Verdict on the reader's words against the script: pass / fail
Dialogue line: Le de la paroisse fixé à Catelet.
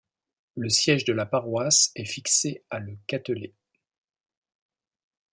fail